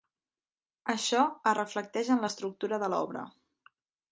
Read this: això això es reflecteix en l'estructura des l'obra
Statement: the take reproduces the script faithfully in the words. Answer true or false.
false